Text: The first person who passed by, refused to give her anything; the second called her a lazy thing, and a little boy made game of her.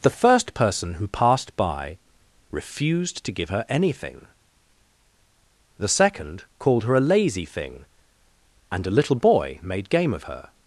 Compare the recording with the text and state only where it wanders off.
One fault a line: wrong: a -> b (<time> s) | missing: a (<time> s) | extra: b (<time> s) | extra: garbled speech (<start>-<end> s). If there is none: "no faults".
no faults